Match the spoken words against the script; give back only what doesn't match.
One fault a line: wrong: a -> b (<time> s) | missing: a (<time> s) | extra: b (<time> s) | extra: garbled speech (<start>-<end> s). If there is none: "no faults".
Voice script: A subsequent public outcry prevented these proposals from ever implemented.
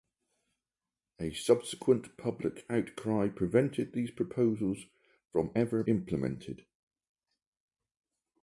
no faults